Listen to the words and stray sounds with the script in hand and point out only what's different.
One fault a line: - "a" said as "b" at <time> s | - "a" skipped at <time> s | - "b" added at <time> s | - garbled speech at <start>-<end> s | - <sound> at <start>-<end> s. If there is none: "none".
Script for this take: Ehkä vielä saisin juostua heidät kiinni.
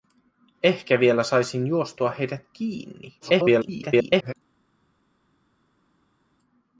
- garbled speech at 3.2-4.3 s